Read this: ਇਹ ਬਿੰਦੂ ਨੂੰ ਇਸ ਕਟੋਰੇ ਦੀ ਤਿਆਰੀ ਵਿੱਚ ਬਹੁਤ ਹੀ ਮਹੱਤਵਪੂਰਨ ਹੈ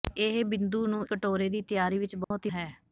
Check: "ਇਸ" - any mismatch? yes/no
yes